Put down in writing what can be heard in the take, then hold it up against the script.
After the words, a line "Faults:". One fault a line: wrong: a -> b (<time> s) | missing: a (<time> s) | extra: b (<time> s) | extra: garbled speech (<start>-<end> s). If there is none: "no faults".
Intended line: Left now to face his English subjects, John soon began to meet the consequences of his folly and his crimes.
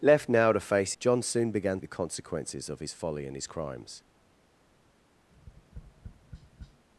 Left now to face John soon began the consequences of his folly and his crimes.
Faults:
missing: his English subjects (0.9 s)
missing: to meet (1.8 s)